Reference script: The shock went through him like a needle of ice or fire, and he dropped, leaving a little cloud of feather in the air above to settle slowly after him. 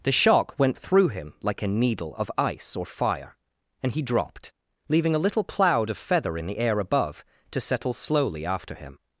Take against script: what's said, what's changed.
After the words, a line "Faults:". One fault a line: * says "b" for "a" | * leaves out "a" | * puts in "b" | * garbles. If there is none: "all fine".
The shock went through him like a needle of ice or fire, and he dropped, leaving a little cloud of feather in the air above to settle slowly after him.
Faults:
all fine